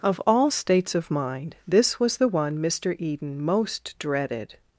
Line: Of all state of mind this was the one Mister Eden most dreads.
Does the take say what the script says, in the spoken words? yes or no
no